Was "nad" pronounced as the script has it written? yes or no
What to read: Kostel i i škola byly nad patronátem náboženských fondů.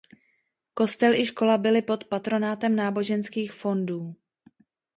no